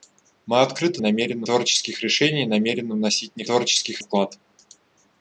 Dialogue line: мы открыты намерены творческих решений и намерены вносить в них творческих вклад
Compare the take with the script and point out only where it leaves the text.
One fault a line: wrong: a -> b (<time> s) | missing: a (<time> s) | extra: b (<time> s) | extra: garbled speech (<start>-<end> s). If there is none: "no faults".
no faults